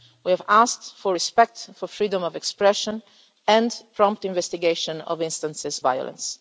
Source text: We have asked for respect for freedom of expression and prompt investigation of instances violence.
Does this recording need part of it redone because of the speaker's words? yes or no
no